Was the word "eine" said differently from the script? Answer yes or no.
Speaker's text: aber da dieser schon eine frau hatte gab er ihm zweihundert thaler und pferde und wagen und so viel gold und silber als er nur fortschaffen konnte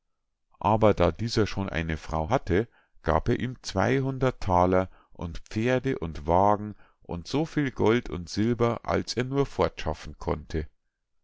no